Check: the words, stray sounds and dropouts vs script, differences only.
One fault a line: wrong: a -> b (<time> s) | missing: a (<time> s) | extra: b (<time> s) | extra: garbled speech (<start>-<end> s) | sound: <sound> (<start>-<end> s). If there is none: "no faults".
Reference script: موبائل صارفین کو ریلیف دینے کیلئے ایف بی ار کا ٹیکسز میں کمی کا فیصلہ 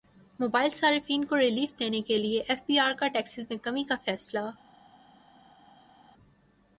no faults